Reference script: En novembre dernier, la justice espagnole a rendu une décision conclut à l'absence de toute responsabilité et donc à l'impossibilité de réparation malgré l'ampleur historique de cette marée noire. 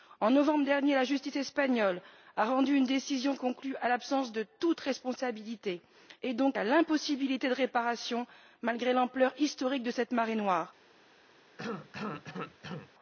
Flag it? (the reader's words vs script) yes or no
no